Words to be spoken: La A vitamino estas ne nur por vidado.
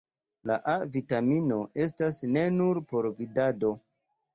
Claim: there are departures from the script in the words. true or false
false